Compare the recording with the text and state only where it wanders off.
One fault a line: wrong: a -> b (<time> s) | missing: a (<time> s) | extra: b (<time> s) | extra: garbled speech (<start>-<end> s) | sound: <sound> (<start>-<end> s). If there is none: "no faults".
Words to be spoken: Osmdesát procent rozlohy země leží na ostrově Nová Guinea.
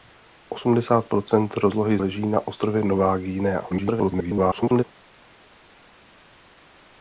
missing: země (2.0 s)
extra: garbled speech (3.7-4.8 s)